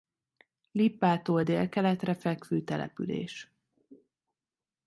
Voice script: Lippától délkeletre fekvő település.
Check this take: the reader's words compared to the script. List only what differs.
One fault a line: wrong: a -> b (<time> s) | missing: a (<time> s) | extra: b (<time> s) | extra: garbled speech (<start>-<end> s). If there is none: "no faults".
no faults